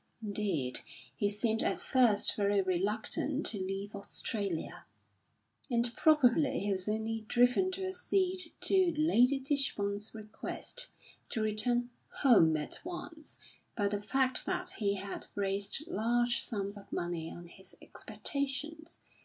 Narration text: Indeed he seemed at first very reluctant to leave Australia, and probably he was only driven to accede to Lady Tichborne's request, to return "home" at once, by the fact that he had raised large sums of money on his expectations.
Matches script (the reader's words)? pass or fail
pass